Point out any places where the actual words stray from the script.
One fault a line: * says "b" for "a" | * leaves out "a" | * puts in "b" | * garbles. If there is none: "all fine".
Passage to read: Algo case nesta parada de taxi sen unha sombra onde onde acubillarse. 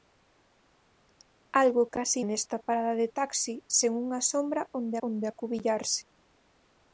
all fine